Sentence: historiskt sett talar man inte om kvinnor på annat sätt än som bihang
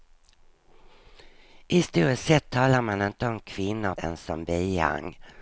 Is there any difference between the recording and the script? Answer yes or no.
yes